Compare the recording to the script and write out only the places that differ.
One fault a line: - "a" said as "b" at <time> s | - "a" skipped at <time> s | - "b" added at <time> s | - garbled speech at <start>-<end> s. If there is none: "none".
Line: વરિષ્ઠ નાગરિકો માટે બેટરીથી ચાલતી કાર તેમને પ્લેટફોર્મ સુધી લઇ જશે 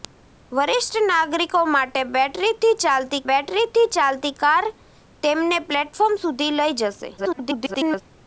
- "બેટરીથી ચાલતી" added at 3.3 s
- garbled speech at 7.2-8.0 s